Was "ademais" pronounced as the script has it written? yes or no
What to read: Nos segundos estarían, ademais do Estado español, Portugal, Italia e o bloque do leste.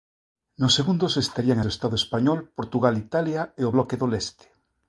no